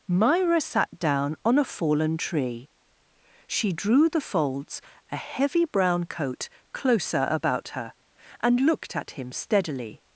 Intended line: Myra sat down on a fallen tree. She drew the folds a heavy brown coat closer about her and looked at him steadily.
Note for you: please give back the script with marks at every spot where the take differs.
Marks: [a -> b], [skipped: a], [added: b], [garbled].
Myra sat down on a fallen tree. She drew the folds a heavy brown coat closer about her and looked at him steadily.